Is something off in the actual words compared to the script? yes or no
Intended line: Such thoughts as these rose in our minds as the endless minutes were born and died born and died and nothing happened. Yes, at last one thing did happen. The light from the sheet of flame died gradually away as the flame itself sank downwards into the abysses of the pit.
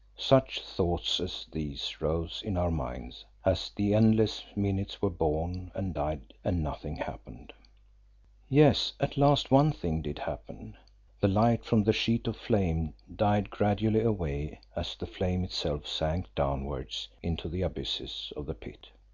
yes